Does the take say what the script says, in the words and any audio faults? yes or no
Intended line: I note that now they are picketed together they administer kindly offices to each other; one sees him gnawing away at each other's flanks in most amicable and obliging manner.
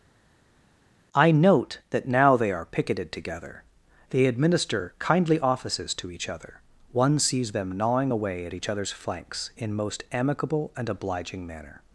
no